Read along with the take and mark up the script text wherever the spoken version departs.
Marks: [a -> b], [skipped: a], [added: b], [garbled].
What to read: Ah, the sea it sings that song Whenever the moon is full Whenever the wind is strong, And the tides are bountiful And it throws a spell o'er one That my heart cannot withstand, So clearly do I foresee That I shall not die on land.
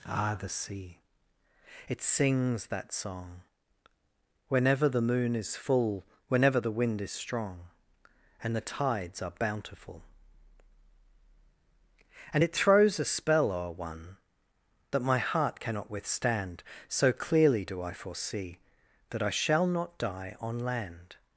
Ah, the sea it sings that song Whenever the moon is full Whenever the wind is strong, And the tides are bountiful And it throws a spell o'er one That my heart cannot withstand, So clearly do I foresee That I shall not die on land.